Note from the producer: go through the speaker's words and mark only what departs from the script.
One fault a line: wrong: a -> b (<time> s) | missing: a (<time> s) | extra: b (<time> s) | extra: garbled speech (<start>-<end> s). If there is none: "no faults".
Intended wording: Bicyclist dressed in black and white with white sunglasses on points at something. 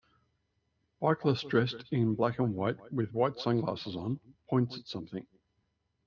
no faults